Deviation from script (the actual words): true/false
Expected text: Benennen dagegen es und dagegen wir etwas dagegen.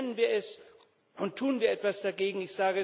true